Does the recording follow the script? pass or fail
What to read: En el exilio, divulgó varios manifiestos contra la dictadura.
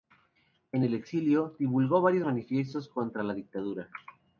pass